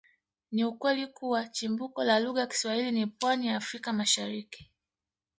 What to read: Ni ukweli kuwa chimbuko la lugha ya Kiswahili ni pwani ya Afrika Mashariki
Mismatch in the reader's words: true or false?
false